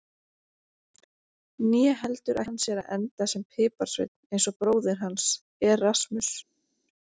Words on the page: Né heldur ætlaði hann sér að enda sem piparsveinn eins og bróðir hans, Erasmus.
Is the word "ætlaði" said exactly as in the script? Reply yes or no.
no